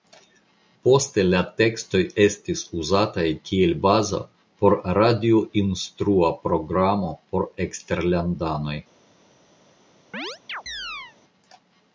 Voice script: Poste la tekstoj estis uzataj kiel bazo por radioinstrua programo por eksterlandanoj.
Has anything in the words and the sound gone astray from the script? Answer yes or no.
yes